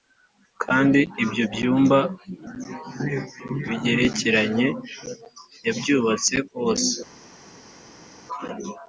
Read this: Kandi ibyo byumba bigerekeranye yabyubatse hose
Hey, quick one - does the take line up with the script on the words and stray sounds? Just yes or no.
yes